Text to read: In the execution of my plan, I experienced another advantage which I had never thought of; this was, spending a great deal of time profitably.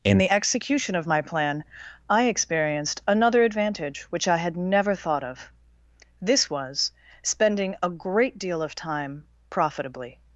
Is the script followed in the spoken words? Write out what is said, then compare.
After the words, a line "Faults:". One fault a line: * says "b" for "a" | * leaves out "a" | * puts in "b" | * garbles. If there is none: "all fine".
In the execution of my plan, I experienced another advantage which I had never thought of; this was, spending a great deal of time profitably.
Faults:
all fine